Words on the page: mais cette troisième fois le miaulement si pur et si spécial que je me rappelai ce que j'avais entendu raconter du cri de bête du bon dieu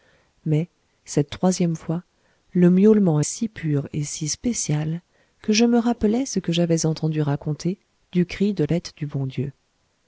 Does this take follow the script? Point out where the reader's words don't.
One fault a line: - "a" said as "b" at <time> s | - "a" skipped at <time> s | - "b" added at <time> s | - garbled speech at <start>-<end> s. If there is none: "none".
none